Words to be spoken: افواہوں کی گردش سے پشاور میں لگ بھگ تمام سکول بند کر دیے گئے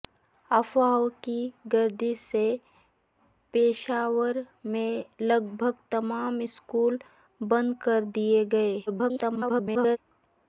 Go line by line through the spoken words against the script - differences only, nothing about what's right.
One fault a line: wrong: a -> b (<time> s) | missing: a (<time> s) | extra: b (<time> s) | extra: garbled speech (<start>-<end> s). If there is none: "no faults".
extra: garbled speech (8.9-10.0 s)